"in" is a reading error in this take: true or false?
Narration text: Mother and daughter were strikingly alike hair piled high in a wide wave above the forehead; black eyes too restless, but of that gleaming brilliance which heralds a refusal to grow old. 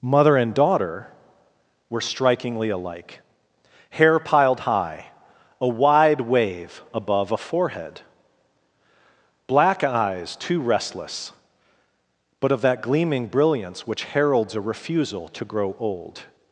true